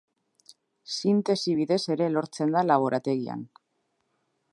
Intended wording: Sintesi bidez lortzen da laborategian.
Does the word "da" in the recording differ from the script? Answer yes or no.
no